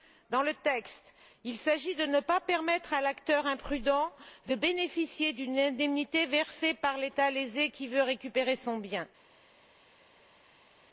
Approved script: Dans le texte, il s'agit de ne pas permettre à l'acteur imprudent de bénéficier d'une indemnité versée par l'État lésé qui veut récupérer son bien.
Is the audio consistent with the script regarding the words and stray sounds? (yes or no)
yes